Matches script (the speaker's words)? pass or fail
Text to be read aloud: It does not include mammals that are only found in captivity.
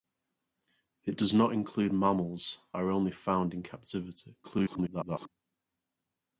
fail